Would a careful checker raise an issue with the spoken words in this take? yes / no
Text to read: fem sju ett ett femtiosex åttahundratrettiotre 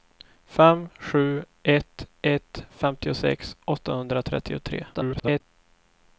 yes